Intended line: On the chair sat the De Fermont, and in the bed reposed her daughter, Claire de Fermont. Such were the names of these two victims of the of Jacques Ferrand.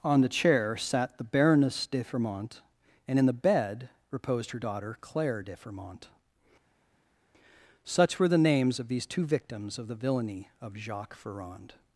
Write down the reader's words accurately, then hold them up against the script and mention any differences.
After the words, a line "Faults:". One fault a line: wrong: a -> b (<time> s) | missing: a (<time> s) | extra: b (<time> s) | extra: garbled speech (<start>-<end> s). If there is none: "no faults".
On the chair sat the Baroness de Fermont, and in the bed reposed her daughter, Claire de Fermont. Such were the names of these two victims of the villainy of Jacques Ferrand.
Faults:
extra: Baroness (1.2 s)
extra: villainy (10.0 s)